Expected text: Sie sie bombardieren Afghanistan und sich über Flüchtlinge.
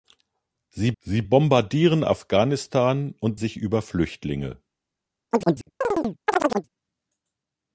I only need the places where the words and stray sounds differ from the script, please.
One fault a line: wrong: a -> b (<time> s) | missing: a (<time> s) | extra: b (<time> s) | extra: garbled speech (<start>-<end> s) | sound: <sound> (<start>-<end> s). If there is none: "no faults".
sound: chirp (5.3-6.7 s)